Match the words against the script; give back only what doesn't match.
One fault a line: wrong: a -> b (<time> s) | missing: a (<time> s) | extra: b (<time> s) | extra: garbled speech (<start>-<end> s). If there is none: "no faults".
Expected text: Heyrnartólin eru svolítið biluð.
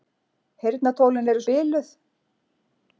missing: svolítið (1.4 s)